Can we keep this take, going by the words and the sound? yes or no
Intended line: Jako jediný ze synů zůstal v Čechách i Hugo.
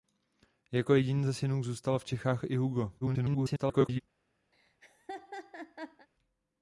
no